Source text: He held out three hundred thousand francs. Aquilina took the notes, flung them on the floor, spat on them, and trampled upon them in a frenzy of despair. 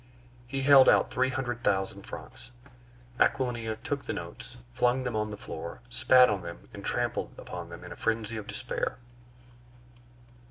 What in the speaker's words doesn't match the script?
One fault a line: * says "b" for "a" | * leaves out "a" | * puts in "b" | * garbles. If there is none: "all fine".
all fine